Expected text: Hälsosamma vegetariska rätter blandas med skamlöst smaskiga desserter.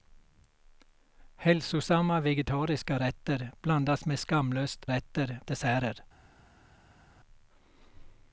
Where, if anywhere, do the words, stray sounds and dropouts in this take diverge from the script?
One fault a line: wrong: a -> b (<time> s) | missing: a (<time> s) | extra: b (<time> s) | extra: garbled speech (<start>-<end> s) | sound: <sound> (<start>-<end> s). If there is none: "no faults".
wrong: smaskiga -> rätter (4.9 s)